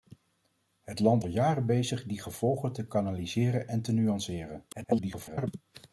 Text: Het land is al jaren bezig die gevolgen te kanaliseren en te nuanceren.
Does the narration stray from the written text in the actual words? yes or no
yes